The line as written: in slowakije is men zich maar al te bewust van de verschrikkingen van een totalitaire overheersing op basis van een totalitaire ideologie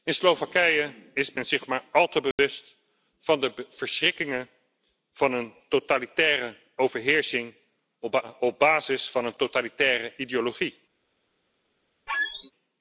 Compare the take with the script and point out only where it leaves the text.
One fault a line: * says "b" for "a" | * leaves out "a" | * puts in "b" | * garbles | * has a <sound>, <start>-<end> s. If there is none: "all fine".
* has a dropout, 2.3-2.4 s
* has a squeak, 12.1-12.5 s